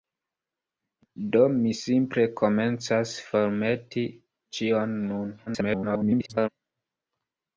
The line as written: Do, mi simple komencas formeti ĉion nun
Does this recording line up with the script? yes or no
no